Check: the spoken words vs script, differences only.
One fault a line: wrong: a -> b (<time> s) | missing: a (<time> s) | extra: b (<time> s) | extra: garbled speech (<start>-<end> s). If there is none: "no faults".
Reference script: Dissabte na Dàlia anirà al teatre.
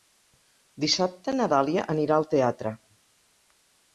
no faults